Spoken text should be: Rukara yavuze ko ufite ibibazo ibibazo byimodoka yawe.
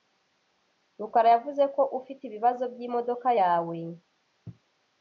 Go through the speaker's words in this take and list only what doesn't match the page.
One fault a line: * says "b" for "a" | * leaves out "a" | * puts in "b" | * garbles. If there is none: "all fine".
* leaves out "ibibazo"